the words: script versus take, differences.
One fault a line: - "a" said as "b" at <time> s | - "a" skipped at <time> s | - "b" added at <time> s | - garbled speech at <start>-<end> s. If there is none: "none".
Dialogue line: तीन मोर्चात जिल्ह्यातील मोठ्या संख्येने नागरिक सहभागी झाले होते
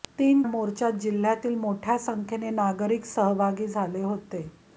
none